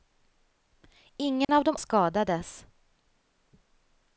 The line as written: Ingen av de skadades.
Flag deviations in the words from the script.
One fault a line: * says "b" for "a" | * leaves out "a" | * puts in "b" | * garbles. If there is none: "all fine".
all fine